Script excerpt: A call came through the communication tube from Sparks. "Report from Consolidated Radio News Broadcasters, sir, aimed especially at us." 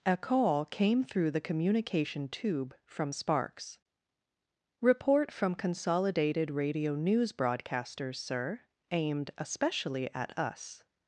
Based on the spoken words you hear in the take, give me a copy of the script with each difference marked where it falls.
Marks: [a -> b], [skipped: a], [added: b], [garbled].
A call came through the communication tube from Sparks. "Report from Consolidated Radio News Broadcasters, sir, aimed especially at us."